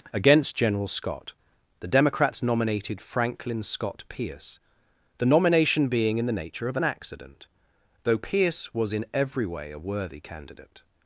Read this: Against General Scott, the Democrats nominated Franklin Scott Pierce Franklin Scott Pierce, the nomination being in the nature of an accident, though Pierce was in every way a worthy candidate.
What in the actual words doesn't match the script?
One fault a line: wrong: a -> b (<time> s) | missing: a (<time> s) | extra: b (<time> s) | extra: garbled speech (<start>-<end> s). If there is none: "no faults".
missing: Franklin Scott Pierce (4.6 s)